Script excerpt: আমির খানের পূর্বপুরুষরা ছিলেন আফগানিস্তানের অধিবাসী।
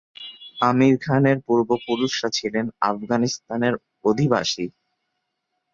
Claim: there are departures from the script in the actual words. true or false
false